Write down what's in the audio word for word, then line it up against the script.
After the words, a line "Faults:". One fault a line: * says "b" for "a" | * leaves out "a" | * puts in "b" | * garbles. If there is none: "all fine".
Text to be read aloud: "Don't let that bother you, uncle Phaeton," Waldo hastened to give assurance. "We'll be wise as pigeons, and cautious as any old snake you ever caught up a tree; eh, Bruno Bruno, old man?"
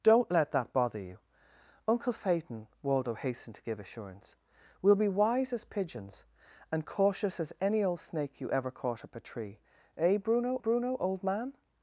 "Don't let that bother you, uncle Phaeton," Waldo hastened to give assurance. "We'll be wise as pigeons, and cautious as any old snake you ever caught up a tree; eh, Bruno Bruno, old man?"
Faults:
all fine